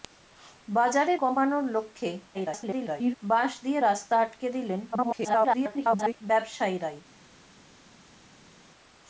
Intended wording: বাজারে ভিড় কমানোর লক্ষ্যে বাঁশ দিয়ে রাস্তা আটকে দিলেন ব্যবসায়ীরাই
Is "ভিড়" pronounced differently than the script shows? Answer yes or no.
yes